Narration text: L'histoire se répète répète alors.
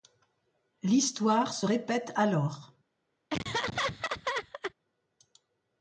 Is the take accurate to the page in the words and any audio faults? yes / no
no